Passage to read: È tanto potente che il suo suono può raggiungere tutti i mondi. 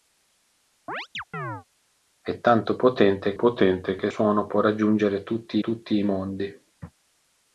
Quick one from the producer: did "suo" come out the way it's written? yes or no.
no